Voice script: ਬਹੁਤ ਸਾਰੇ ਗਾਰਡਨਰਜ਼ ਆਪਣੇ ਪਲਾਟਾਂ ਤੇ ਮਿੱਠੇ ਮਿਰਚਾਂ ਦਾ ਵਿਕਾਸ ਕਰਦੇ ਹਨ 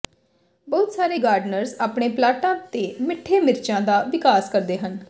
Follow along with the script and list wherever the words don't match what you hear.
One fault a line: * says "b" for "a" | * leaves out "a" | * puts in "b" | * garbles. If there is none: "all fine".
all fine